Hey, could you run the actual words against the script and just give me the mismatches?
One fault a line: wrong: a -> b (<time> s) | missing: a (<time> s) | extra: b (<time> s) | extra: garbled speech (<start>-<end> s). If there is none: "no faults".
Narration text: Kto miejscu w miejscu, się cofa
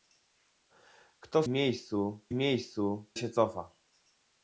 no faults